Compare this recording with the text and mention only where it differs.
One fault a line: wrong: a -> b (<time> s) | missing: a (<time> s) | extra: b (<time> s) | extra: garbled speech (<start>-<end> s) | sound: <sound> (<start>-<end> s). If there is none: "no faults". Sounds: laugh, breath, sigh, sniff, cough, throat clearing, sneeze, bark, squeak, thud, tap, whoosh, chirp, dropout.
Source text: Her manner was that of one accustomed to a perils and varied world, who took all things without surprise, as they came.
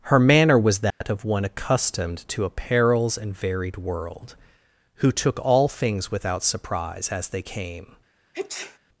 sound: dropout (0.9-1.0 s)
sound: sneeze (8.3-8.8 s)